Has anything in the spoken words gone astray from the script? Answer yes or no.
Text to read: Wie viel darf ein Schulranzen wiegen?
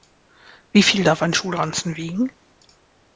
no